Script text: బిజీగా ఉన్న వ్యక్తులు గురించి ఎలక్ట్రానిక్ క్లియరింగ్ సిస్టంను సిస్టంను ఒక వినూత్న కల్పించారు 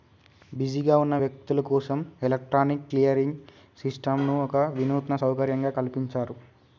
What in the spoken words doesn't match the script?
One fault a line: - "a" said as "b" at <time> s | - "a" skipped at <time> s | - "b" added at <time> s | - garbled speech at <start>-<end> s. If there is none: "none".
- "గురించి" said as "కోసం" at 1.7 s
- "సిస్టంను" skipped at 4.3 s
- "సౌకర్యంగా" added at 5.2 s